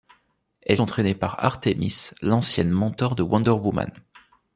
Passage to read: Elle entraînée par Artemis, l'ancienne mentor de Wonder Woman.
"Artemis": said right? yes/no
yes